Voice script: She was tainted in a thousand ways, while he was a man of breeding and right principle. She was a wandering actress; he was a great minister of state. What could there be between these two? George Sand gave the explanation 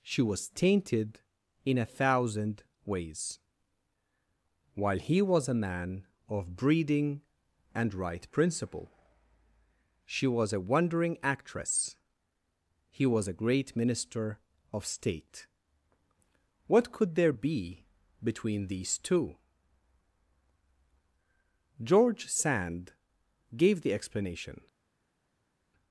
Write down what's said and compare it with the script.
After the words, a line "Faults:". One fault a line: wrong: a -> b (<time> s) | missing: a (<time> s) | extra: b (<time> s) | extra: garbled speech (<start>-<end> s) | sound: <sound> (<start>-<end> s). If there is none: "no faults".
She was tainted in a thousand ways, while he was a man of breeding and right principle. She was a wandering actress; he was a great minister of state. What could there be between these two? George Sand gave the explanation
Faults:
no faults